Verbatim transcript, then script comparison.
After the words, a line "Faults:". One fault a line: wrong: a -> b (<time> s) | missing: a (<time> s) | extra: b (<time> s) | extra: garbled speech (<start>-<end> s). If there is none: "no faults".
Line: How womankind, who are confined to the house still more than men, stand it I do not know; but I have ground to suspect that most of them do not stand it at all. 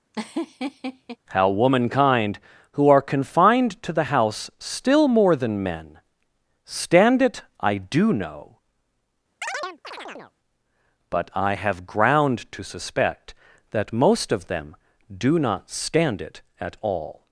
How womankind, who are confined to the house still more than men, stand it I do know; but I have ground to suspect that most of them do not stand it at all.
Faults:
missing: not (8.1 s)